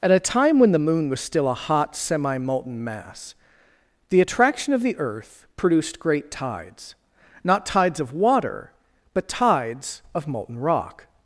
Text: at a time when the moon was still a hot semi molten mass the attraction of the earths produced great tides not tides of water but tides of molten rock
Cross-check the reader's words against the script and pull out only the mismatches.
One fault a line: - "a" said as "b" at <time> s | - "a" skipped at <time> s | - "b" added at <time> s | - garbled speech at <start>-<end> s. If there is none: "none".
- "earths" said as "earth" at 5.0 s